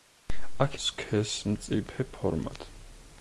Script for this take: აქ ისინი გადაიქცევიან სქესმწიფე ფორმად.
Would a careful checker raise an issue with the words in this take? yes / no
yes